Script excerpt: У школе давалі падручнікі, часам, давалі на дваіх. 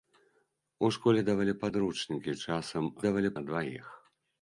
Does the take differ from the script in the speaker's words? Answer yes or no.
no